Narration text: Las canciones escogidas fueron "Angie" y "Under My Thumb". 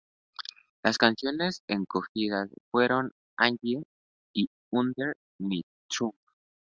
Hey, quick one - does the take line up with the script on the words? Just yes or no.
yes